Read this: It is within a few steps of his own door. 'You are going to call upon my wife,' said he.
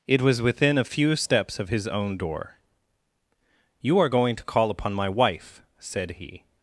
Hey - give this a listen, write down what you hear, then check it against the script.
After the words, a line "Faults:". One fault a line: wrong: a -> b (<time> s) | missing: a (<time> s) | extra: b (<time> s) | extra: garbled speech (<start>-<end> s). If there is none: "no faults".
It was within a few steps of his own door. 'You are going to call upon my wife,' said he.
Faults:
wrong: is -> was (0.2 s)